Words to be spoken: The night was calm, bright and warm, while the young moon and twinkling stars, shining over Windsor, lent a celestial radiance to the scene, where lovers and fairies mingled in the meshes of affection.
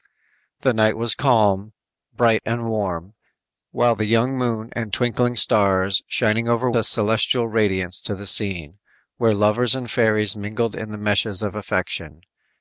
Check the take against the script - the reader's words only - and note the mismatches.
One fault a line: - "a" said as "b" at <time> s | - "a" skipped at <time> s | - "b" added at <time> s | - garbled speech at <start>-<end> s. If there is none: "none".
- "Windsor lent" skipped at 6.7 s